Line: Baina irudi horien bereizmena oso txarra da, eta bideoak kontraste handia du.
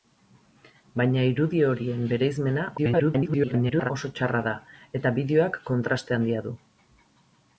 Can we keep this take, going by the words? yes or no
no